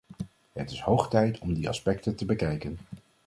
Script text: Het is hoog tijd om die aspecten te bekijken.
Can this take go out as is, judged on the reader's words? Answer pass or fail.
pass